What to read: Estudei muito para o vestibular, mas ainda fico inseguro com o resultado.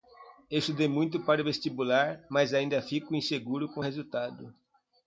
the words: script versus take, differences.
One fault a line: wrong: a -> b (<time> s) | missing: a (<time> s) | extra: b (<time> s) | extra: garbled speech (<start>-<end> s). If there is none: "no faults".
no faults